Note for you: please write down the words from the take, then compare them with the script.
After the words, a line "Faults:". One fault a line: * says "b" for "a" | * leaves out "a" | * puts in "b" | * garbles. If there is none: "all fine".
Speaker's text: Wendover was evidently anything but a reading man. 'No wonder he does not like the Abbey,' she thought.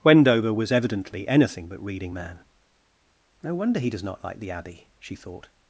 Wendover was evidently anything but reading man. 'No wonder he does not like the Abbey,' she thought.
Faults:
* leaves out "a"